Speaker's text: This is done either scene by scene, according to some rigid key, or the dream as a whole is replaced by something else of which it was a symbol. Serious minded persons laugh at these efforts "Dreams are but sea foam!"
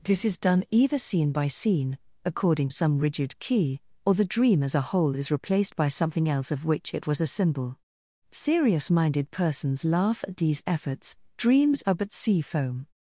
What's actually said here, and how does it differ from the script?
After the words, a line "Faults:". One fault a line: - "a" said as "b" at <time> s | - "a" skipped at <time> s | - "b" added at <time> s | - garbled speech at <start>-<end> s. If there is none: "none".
This is done either scene by scene, according some rigid key, or the dream as a whole is replaced by something else of which it was a symbol. Serious minded persons laugh at these efforts "Dreams are but sea foam!"
Faults:
- "to" skipped at 2.7 s